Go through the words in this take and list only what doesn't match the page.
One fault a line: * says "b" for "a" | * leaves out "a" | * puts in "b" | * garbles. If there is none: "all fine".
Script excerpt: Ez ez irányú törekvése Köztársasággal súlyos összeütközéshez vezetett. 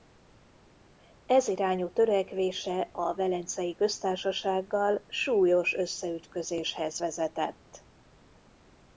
* leaves out "ez"
* puts in "a Velencei"